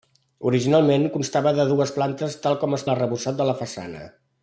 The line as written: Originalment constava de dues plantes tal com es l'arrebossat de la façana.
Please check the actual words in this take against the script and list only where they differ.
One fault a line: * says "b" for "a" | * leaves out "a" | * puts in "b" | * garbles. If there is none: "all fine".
all fine